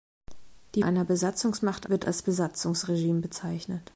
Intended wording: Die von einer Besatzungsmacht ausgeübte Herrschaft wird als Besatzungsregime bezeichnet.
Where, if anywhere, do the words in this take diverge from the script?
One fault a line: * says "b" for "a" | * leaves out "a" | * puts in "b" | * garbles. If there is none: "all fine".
* leaves out "von"
* leaves out "ausgeübte Herrschaft"